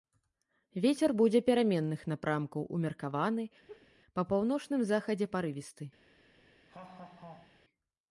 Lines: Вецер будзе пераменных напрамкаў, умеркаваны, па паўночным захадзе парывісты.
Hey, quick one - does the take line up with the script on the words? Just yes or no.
yes